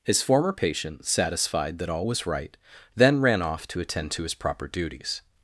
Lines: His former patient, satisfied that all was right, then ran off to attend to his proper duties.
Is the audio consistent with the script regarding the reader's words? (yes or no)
yes